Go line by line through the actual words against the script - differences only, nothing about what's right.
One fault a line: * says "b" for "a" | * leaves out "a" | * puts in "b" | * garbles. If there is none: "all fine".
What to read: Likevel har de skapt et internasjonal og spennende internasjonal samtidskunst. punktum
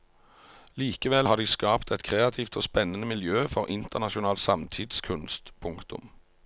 * says "kreativt" for "internasjonal"
* puts in "miljø for"